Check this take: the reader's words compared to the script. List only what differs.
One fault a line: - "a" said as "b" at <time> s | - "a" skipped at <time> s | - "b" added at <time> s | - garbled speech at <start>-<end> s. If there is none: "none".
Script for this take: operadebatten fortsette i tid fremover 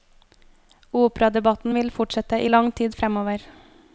- "vil" added at 1.7 s
- "lang" added at 2.4 s